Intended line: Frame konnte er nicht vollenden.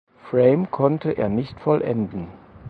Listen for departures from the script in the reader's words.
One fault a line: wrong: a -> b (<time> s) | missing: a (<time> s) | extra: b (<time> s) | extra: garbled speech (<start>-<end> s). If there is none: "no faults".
no faults